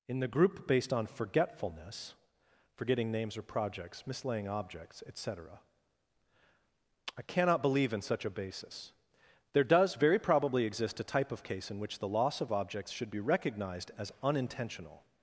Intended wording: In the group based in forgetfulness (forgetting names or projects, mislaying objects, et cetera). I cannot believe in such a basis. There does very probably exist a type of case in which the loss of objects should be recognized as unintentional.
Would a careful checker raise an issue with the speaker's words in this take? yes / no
yes